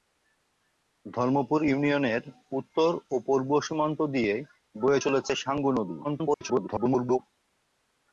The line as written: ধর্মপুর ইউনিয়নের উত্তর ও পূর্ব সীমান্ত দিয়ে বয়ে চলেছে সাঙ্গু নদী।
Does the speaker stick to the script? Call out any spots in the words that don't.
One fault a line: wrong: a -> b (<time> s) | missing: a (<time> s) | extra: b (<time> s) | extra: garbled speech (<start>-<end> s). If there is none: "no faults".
extra: garbled speech (6.0-7.2 s)